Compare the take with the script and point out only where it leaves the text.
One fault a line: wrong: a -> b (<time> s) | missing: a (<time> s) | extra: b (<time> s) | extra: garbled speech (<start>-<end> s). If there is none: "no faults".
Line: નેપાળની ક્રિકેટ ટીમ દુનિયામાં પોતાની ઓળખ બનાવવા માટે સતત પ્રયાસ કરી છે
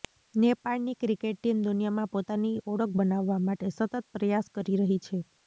extra: રહી (4.8 s)